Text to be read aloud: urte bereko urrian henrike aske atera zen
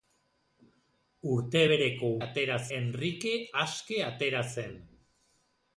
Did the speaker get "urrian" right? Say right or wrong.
wrong